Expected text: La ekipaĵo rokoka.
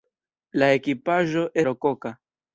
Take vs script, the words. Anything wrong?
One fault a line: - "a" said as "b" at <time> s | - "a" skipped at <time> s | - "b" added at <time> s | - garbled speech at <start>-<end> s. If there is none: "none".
none